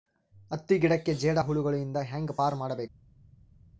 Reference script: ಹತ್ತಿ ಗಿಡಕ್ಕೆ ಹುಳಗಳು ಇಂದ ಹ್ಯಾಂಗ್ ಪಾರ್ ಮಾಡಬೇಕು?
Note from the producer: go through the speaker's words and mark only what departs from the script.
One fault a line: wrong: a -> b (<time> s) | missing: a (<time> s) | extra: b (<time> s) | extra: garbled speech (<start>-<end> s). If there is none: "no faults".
extra: ಜೇಡ (1.1 s)